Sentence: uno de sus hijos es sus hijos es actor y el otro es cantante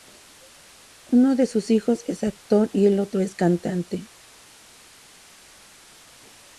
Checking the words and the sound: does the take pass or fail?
fail